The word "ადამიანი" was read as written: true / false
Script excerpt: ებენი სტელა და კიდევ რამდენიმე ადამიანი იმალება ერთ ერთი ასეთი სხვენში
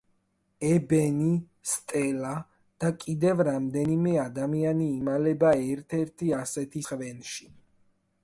true